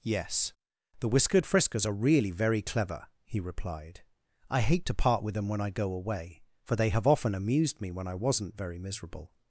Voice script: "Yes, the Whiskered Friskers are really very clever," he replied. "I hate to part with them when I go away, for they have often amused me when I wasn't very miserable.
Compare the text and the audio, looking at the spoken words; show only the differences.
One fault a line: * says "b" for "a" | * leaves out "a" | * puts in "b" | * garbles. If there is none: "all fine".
all fine